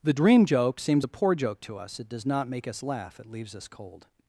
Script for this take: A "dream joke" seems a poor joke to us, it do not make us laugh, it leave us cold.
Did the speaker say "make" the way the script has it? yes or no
yes